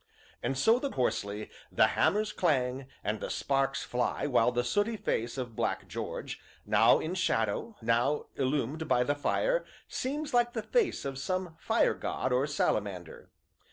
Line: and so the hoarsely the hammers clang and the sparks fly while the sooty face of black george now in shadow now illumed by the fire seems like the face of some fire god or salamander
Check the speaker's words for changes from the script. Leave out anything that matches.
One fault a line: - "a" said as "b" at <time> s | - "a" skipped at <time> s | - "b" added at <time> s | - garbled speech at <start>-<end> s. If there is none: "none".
none